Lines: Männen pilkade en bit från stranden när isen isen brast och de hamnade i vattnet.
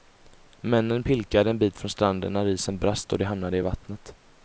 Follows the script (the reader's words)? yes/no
no